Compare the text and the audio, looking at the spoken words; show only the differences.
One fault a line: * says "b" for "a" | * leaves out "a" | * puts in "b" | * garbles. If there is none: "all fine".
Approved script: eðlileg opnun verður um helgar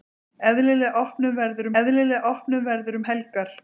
* puts in "eðlileg opnun verður"